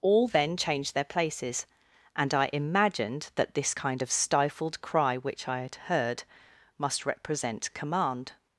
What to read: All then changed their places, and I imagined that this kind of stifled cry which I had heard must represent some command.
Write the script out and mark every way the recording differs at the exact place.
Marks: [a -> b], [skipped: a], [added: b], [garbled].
All then changed their places, and I imagined that this kind of stifled cry which I had heard must represent [skipped: some] command.